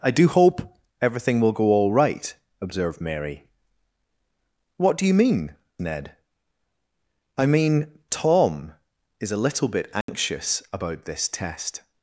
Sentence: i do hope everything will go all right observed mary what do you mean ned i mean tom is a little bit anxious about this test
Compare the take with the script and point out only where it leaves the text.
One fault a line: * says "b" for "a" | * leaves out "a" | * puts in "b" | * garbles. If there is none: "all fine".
all fine